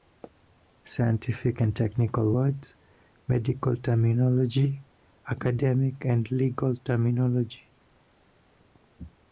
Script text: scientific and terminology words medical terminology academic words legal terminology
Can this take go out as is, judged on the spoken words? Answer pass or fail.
fail